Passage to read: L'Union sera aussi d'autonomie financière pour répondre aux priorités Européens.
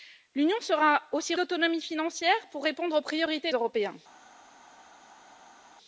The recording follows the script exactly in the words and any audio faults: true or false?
true